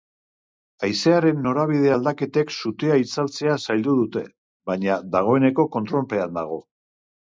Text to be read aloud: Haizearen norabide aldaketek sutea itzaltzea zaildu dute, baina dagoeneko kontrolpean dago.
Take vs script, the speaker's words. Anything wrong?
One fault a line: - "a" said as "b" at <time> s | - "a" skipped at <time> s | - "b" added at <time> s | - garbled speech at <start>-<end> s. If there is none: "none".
none